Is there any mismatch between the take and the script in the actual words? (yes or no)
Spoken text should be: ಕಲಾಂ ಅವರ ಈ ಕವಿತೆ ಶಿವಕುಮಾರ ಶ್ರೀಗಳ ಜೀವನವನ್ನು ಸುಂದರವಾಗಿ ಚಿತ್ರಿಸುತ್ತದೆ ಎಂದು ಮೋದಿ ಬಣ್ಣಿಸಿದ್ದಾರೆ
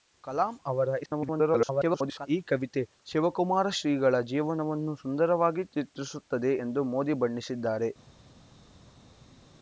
yes